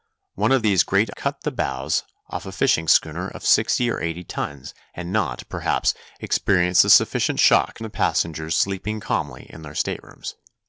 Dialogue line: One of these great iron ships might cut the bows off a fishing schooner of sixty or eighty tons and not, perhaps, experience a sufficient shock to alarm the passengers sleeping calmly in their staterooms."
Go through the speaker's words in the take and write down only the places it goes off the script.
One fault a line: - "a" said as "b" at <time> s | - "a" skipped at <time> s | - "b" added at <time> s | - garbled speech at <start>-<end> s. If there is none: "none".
- "iron ships might" skipped at 1.1 s
- "to alarm" skipped at 7.8 s